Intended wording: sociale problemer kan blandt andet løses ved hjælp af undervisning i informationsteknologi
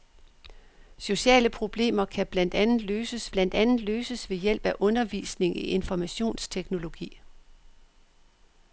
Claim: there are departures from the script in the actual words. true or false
true